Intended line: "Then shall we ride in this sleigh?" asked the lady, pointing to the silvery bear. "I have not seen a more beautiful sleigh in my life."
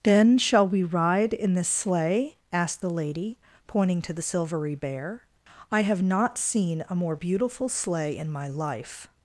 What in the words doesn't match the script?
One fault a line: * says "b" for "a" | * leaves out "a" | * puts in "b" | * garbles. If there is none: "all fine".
all fine